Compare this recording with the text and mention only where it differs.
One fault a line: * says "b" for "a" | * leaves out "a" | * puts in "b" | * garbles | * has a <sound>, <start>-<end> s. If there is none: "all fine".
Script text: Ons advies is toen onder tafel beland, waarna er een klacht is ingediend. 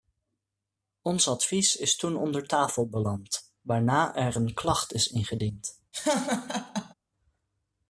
* has a laugh, 5.9-6.9 s